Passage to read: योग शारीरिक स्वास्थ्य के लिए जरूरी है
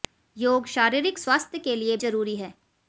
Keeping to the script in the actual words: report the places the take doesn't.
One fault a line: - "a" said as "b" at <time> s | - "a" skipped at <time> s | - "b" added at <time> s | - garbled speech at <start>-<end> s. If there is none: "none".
none